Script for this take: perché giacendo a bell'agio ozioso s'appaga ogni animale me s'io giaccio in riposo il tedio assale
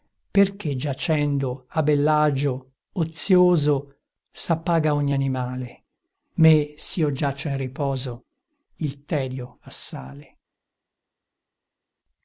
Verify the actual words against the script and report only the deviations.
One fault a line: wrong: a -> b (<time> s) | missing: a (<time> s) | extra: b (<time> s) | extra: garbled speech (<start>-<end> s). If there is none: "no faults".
no faults